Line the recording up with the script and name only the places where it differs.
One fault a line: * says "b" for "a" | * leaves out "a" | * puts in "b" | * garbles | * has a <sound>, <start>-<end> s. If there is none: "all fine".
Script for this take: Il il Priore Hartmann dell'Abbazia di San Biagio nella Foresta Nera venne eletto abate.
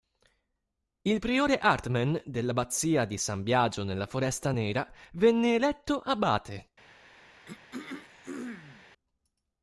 * leaves out "il"
* has a throat clearing, 7.5-8.9 s